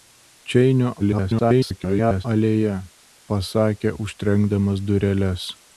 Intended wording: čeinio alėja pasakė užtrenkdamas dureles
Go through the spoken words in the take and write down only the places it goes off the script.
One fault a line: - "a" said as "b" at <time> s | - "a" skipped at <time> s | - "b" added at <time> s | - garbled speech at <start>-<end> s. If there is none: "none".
- garbled speech at 1.0-2.3 s